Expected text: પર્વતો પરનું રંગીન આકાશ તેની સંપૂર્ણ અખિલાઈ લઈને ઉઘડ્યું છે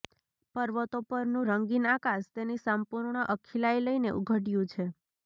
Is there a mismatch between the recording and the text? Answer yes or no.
no